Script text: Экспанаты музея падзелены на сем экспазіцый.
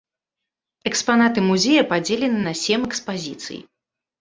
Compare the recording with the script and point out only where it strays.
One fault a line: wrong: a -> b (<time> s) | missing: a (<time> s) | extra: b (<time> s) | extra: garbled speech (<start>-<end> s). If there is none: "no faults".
no faults